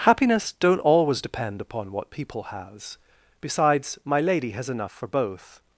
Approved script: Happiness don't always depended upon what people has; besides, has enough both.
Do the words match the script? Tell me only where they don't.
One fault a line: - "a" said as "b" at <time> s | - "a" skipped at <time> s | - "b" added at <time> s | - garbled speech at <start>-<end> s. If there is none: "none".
- "depended" said as "depend" at 1.2 s
- "my lady" added at 4.0 s
- "for" added at 4.9 s